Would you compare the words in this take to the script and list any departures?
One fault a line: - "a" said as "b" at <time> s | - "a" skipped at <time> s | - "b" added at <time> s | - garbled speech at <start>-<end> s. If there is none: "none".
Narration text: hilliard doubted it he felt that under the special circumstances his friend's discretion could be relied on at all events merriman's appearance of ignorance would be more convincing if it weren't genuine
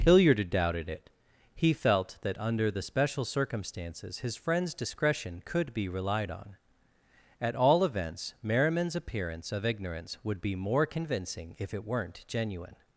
none